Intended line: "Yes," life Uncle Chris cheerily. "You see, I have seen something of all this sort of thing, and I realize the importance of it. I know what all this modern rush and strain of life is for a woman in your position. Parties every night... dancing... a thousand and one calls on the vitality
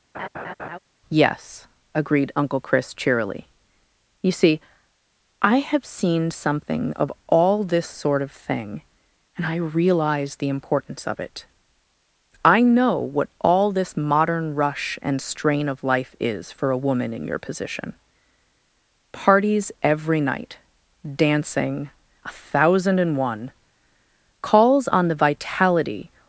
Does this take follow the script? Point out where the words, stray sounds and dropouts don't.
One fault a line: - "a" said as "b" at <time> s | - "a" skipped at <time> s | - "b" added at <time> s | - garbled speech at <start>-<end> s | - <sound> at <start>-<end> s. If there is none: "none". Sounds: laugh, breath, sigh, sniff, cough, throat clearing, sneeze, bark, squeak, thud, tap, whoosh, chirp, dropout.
- laugh at 0.1-0.8 s
- "life" said as "agreed" at 1.9 s